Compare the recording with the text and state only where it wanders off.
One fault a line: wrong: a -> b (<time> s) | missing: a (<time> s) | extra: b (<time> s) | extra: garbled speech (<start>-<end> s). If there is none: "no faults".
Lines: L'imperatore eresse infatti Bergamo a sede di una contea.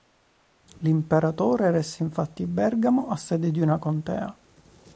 no faults